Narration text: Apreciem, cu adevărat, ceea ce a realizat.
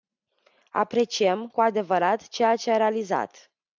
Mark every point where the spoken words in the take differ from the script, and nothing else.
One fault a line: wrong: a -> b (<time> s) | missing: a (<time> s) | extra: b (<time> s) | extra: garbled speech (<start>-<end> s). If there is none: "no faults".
no faults